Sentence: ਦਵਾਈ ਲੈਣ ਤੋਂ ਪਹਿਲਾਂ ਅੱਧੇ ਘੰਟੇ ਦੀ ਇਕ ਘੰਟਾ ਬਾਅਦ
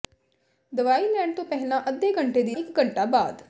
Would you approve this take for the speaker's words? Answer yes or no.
yes